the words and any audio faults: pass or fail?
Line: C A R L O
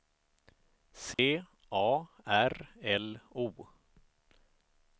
fail